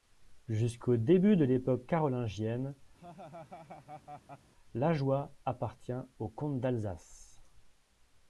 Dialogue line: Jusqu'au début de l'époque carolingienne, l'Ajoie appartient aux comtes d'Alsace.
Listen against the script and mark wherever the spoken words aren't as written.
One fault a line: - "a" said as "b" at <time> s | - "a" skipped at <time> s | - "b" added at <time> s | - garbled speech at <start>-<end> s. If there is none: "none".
none